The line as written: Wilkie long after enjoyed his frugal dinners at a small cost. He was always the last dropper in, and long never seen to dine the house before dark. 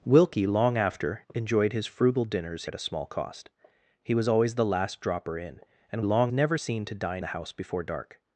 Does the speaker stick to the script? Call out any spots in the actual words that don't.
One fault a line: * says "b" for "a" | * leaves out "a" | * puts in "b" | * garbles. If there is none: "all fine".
all fine